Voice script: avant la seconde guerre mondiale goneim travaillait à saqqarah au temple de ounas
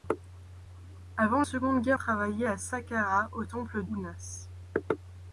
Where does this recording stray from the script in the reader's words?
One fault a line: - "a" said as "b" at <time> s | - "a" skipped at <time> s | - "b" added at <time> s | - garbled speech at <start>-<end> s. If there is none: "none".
- "la" skipped at 1.4 s
- "mondiale goneim" skipped at 2.0 s
- "de" skipped at 3.8 s